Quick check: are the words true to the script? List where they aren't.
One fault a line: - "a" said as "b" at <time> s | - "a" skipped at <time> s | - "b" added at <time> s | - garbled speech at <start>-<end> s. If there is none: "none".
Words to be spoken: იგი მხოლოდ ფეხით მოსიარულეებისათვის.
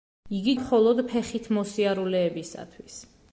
none